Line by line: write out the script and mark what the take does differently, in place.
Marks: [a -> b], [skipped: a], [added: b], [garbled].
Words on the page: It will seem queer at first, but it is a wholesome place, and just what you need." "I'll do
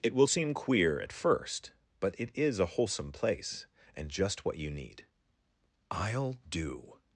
It will seem queer at first, but it is a wholesome place, and just what you need." "I'll do